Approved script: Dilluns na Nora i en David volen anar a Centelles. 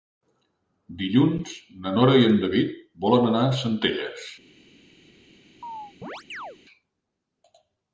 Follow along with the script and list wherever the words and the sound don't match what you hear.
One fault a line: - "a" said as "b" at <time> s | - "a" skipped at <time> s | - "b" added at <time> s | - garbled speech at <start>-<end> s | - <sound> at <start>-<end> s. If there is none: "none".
- chirp at 5.6-6.6 s